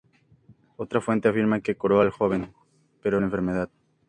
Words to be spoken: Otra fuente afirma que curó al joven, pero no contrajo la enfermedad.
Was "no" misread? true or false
true